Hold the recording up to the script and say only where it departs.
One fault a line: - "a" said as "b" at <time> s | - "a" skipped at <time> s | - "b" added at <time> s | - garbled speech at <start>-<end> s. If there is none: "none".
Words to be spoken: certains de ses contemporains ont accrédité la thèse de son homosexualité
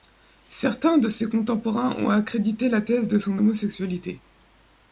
none